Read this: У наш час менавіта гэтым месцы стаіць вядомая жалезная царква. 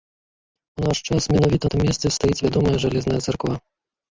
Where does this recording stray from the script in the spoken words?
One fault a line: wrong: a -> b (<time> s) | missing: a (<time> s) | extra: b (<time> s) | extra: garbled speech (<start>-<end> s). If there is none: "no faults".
no faults